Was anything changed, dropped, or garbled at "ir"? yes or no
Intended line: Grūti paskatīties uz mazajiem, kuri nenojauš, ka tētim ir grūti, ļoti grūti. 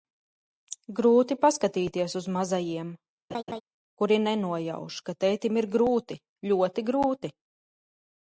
no